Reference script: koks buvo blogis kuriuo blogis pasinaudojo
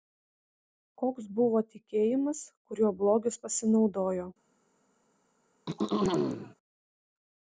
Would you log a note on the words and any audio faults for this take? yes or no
yes